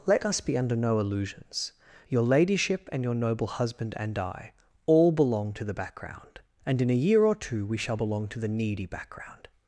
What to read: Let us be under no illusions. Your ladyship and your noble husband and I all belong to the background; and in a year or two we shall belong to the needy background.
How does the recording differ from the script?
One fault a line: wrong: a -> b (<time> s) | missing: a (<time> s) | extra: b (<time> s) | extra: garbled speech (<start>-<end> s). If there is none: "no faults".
no faults